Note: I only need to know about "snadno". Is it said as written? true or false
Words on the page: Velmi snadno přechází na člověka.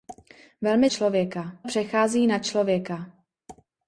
false